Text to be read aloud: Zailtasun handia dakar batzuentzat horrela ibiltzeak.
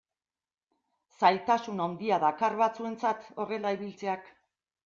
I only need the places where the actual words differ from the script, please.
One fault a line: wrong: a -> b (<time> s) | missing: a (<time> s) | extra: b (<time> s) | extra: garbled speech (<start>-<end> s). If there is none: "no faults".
no faults